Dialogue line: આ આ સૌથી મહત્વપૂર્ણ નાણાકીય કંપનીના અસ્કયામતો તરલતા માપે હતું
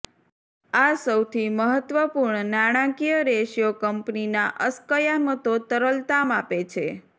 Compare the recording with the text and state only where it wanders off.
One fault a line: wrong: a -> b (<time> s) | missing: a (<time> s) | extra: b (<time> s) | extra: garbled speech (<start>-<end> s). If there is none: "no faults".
missing: આ (0.9 s)
extra: રેશિયો (3.3 s)
wrong: હતું -> છે (6.7 s)